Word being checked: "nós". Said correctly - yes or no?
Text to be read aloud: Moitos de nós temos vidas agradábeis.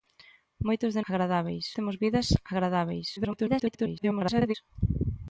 no